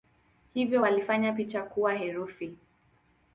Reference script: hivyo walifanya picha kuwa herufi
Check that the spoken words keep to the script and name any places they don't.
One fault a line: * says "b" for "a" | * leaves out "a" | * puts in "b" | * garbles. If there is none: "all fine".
all fine